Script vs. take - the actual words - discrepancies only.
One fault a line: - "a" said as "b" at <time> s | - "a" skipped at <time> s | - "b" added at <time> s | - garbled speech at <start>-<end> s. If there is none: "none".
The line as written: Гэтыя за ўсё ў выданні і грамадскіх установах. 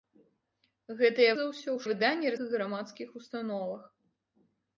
none